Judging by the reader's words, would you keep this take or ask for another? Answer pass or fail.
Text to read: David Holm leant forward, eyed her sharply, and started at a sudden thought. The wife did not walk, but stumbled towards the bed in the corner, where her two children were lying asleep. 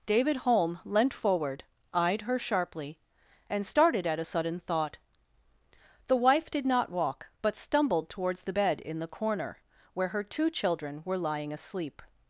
pass